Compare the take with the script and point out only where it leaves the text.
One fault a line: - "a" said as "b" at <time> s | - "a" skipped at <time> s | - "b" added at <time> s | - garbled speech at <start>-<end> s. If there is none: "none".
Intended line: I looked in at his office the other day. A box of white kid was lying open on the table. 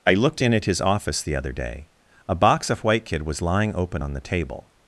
none